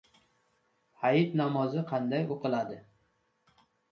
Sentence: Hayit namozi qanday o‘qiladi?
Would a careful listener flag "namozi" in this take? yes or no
no